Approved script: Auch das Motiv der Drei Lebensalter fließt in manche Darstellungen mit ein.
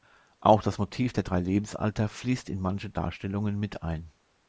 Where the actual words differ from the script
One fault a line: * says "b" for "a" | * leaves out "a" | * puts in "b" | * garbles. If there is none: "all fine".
all fine